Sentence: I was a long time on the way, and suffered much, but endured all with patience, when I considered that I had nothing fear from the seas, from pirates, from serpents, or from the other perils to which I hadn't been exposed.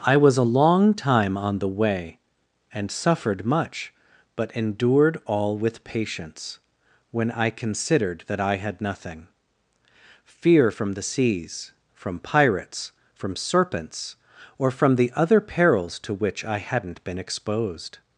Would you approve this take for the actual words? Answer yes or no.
yes